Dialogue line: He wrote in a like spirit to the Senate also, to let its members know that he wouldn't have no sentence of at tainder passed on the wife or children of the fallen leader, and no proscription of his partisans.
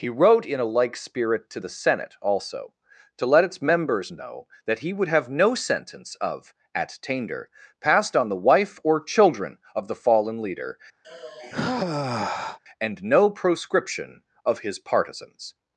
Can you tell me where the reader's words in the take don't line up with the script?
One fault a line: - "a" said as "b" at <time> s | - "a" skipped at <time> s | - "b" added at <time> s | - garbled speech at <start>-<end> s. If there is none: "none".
- "wouldn't" said as "would" at 4.9 s